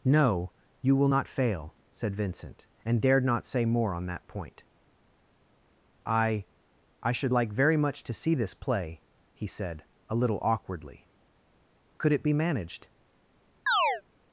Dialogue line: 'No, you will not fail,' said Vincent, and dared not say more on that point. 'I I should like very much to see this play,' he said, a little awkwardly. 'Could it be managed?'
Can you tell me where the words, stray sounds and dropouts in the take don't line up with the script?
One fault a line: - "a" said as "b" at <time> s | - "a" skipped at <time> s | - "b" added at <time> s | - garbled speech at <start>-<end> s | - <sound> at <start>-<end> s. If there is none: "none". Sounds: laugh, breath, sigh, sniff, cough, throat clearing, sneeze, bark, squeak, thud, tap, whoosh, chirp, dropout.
- chirp at 13.7-14.0 s